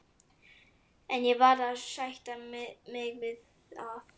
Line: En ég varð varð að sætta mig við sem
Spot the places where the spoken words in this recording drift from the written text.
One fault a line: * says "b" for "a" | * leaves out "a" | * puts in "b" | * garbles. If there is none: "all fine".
* leaves out "varð"
* says "að" for "sem"